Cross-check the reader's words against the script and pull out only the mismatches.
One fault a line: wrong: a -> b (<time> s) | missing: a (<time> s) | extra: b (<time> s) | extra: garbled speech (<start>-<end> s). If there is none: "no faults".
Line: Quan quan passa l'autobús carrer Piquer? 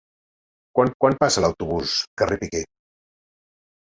no faults